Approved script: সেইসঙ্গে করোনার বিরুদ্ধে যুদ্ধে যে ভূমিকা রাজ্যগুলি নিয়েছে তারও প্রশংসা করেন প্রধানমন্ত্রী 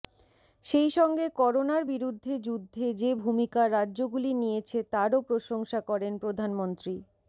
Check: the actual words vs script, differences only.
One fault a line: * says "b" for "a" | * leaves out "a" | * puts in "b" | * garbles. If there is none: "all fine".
all fine